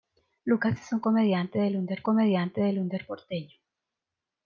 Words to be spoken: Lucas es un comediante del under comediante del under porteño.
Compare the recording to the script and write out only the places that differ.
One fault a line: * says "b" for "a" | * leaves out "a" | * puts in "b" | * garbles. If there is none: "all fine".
all fine